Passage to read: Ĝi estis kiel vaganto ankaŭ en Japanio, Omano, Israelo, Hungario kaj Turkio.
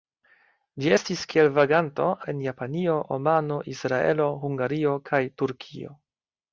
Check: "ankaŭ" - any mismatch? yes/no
yes